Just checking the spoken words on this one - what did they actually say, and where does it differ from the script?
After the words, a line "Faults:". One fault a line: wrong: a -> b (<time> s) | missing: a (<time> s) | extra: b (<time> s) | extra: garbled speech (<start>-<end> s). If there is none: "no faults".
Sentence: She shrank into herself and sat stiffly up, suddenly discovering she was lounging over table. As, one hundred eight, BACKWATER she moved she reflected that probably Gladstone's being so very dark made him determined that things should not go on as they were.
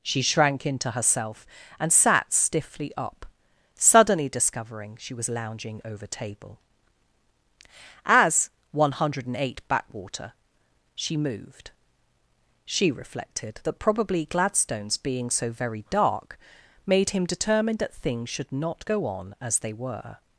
She shrank into herself and sat stiffly up, suddenly discovering she was lounging over table. As, one hundred eight, BACKWATER she moved she reflected that probably Gladstone's being so very dark made him determined that things should not go on as they were.
Faults:
no faults